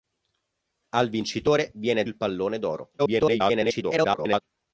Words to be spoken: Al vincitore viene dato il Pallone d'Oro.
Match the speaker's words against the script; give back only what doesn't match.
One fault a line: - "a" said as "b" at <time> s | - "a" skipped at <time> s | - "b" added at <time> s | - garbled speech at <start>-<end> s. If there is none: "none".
- "dato" skipped at 2.0 s
- garbled speech at 3.0-4.4 s